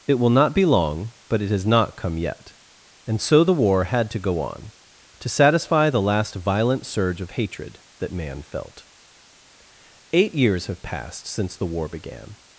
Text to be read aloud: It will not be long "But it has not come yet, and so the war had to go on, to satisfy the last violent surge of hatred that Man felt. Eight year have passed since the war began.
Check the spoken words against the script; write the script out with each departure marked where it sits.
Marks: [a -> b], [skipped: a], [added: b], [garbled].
It will not be long "But it has not come yet, and so the war had to go on, to satisfy the last violent surge of hatred that Man felt. Eight [year -> years] have passed since the war began.